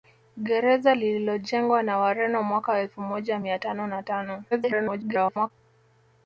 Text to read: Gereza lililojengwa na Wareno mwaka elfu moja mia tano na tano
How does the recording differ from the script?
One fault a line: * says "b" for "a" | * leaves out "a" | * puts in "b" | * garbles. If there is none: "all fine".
* garbles